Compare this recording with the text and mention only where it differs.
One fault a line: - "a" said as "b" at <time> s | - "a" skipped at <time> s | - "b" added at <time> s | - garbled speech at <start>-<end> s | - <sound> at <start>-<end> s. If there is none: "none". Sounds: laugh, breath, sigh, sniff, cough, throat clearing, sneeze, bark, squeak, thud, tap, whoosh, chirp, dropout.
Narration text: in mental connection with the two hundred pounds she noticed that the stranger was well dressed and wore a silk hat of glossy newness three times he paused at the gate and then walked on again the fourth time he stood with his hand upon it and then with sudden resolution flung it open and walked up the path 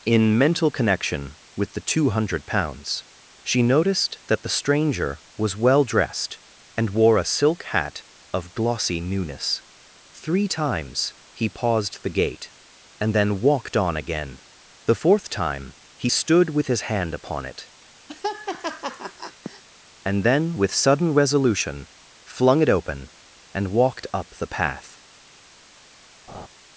- "at" skipped at 12.0 s
- laugh at 18.1-19.6 s
- laugh at 26.3-26.5 s